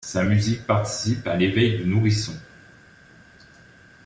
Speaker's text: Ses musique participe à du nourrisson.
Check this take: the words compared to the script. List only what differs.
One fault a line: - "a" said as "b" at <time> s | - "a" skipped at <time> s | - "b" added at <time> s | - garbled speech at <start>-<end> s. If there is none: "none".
- "Ses" said as "Sa" at 0.0 s
- "l'éveil" added at 1.4 s